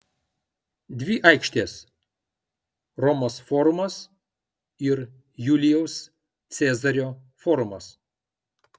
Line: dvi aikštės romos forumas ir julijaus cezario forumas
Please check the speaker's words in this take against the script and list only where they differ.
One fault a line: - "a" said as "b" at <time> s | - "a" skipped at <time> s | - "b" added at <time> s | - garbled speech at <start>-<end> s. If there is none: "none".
none